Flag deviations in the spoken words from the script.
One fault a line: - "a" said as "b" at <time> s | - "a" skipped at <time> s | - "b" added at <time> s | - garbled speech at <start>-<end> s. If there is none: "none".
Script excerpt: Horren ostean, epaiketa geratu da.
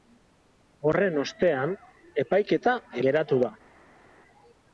none